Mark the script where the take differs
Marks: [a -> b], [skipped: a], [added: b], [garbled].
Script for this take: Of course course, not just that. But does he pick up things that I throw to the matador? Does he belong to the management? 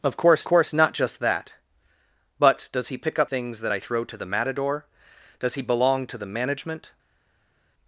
Of course course, not just that. But does he pick up things that I throw to the matador? Does he belong to the management?